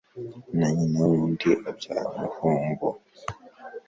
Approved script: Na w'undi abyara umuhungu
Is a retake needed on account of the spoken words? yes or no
yes